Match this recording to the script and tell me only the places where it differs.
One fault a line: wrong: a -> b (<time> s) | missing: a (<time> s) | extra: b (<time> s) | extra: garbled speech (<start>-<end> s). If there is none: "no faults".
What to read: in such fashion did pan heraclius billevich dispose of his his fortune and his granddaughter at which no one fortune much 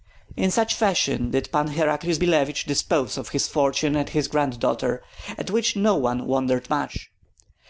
missing: his (3.5 s)
wrong: fortune -> wondered (6.2 s)